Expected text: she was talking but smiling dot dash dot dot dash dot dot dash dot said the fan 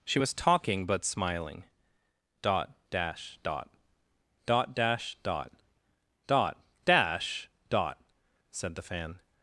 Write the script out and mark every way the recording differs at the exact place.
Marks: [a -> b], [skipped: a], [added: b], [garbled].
she was talking but smiling dot dash dot dot dash dot dot dash dot said the fan